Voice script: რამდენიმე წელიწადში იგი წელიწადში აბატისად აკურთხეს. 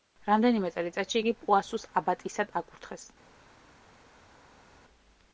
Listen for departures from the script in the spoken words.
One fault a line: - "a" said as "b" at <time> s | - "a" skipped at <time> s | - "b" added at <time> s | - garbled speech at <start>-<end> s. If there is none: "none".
- "წელიწადში" said as "პუასუს" at 1.4 s